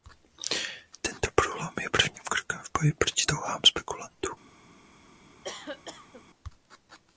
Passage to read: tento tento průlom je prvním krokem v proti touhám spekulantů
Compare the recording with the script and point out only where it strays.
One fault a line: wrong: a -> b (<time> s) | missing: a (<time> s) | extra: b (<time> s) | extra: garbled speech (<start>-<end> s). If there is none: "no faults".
missing: tento (1.3 s)
extra: boji (2.8 s)